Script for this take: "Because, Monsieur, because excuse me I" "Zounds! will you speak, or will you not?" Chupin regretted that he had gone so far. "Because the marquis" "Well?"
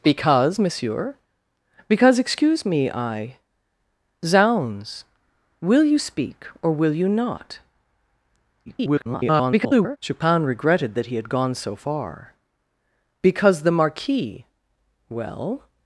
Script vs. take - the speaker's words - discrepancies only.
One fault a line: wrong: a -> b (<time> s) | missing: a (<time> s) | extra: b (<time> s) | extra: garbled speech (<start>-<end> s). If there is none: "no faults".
extra: garbled speech (8.7-10.0 s)